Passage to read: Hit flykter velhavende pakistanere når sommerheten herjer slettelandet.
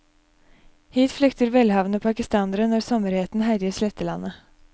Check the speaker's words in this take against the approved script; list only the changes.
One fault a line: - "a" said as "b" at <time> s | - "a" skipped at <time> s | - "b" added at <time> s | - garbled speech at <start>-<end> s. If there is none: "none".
none